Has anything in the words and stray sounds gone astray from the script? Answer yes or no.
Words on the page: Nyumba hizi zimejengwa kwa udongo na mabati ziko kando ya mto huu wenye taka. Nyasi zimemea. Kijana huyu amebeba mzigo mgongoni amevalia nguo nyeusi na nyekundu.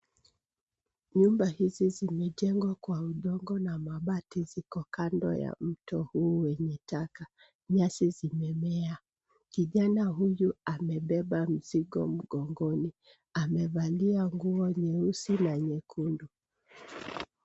no